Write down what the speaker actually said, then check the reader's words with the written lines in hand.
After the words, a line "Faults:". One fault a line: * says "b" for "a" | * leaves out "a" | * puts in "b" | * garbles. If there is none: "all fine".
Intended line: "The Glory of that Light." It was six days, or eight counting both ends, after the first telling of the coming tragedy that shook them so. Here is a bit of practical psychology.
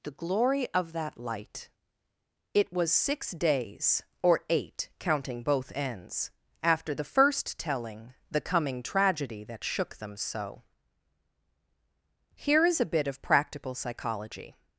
"The Glory of that Light." It was six days, or eight counting both ends, after the first telling the coming tragedy that shook them so. Here is a bit of practical psychology.
Faults:
* leaves out "of"